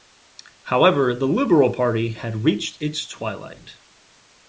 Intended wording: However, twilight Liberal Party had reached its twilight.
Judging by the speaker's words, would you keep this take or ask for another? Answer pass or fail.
fail